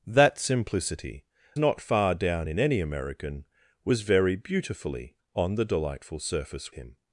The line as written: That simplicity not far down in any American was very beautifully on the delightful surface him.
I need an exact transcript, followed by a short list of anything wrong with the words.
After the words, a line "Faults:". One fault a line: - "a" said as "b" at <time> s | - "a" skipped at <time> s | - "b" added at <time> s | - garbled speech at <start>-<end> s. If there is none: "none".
That simplicity not far down in any American was very beautifully on the delightful surface him.
Faults:
none